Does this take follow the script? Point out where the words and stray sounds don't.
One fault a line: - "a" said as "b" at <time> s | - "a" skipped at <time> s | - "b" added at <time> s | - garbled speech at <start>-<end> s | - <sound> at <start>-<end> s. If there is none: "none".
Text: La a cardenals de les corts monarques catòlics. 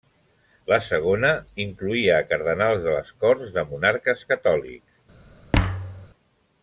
- "segona incloïa" added at 0.8 s
- "de" added at 3.6 s
- thud at 5.5-6.1 s